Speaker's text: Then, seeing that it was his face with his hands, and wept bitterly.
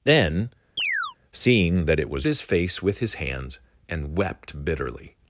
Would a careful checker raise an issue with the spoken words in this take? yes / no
no